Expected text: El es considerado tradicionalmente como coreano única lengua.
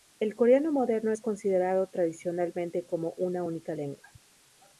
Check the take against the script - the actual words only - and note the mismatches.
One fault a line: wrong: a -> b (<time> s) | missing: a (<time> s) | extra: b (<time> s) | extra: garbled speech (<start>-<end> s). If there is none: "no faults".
extra: coreano moderno (0.3 s)
wrong: coreano -> una (3.2 s)